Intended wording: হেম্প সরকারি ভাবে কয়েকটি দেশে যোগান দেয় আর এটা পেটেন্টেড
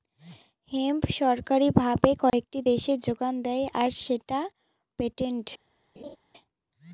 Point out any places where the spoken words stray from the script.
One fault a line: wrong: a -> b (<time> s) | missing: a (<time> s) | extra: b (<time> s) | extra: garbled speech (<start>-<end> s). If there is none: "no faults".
wrong: এটা -> সেটা (4.0 s)